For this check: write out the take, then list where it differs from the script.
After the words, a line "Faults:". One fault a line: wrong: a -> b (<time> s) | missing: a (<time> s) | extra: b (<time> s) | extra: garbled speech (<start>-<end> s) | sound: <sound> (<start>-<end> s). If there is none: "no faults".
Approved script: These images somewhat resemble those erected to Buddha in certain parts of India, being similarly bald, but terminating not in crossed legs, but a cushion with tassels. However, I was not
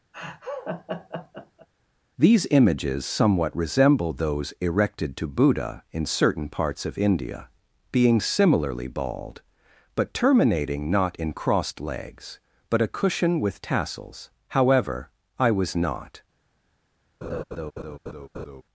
These images somewhat resemble those erected to Buddha in certain parts of India, being similarly bald, but terminating not in crossed legs, but a cushion with tassels. However, I was not
Faults:
sound: laugh (0.1-1.7 s)
sound: laugh (17.2-18.6 s)